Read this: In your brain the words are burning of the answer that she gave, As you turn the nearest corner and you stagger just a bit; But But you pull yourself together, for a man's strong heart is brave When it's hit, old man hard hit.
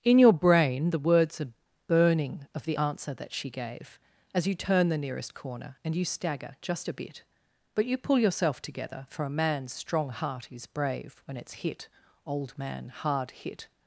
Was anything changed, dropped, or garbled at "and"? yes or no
no